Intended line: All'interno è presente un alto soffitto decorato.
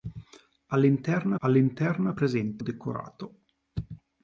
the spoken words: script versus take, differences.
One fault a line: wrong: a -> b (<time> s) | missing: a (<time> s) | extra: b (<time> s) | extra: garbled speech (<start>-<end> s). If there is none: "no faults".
extra: all'interno (1.4 s)
missing: un alto soffitto (2.6 s)